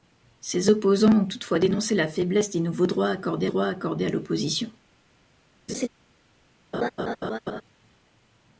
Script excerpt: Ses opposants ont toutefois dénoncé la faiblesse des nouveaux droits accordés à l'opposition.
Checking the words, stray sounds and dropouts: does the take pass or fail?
fail